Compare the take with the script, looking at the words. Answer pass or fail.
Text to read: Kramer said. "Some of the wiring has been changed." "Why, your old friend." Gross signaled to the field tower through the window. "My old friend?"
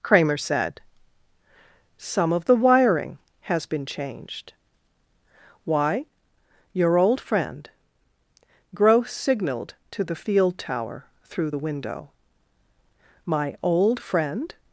pass